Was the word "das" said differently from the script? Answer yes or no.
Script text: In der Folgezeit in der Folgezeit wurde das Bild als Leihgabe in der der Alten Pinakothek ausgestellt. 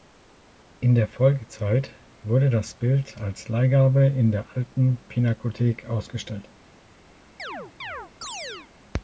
no